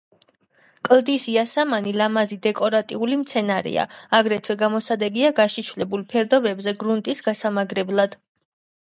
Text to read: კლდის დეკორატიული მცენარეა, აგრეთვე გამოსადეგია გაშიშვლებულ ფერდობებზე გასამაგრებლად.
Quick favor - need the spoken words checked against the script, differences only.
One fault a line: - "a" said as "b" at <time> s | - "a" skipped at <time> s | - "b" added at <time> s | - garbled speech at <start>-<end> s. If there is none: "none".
- "იასამანი ლამაზი" added at 1.3 s
- "გრუნტის" added at 6.8 s